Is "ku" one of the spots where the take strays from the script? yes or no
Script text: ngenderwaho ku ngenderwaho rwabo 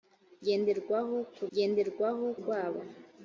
no